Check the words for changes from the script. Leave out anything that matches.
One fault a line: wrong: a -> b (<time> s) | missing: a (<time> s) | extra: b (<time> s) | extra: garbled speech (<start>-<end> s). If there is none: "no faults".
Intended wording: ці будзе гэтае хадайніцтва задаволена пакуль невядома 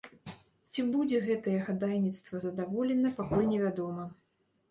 no faults